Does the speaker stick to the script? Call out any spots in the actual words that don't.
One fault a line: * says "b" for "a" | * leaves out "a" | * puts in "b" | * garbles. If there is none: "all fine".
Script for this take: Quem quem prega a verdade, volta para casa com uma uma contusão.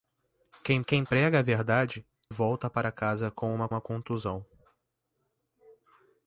all fine